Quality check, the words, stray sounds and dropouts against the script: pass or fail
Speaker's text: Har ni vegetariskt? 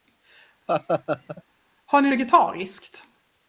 fail